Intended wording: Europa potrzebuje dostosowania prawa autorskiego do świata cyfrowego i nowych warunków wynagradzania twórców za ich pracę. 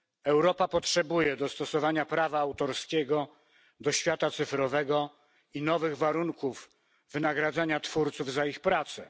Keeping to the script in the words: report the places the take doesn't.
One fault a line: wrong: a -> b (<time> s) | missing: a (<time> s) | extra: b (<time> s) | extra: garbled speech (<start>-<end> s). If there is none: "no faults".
no faults